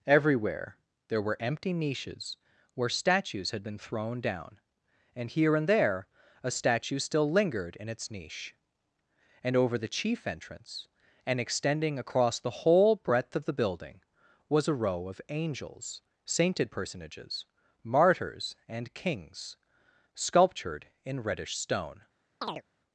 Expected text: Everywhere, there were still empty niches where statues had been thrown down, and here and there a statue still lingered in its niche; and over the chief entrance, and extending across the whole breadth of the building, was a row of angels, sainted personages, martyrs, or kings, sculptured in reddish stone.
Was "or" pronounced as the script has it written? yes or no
no